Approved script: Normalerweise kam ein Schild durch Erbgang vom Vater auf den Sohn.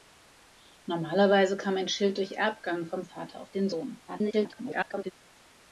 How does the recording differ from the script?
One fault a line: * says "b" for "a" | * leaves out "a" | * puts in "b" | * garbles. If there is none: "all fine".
* garbles